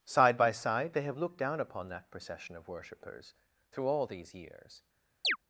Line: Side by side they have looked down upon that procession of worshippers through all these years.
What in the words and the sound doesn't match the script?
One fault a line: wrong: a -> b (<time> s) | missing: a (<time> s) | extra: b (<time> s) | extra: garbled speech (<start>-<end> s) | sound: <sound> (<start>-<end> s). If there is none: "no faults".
sound: chirp (5.2-5.4 s)